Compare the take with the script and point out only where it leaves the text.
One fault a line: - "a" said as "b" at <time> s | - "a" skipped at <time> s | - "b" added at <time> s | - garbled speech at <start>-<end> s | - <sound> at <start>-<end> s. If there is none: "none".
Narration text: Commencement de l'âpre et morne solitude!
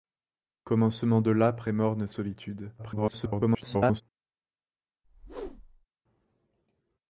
- garbled speech at 2.8-4.0 s
- whoosh at 5.0-5.9 s